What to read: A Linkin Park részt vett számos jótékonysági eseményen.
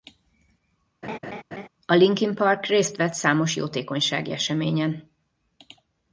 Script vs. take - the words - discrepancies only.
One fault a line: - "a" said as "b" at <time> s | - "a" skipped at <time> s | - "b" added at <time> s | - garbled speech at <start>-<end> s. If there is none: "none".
none